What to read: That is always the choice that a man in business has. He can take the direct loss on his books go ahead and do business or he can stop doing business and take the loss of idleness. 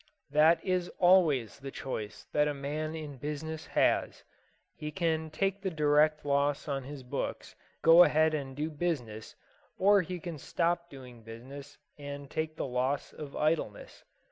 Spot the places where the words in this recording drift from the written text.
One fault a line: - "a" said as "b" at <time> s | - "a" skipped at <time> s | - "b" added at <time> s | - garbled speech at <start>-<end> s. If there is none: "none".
none